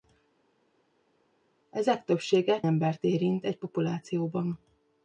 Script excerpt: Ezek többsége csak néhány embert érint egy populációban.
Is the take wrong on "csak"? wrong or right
wrong